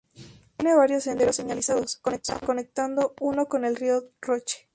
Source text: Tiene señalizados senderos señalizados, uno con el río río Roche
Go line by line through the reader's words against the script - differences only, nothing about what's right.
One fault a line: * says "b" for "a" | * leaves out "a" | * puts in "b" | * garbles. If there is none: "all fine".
* says "varios" for "señalizados"
* puts in "conectando"
* leaves out "río"